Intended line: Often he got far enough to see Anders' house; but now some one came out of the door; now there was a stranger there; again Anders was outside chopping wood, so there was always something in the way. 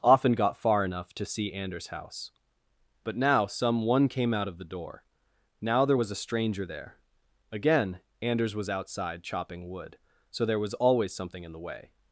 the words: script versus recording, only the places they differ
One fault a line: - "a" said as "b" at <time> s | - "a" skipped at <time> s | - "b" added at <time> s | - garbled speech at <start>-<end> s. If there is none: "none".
- "he" skipped at 0.3 s